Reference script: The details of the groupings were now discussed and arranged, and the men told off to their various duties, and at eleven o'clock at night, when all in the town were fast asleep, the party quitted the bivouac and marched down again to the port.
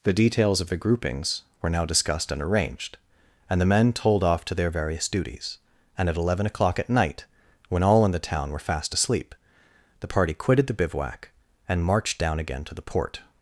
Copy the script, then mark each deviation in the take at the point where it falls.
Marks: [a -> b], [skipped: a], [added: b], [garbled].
The details of the groupings were now discussed and arranged, and the men told off to their various duties, and at eleven o'clock at night, when all in the town were fast asleep, the party quitted the bivouac and marched down again to the port.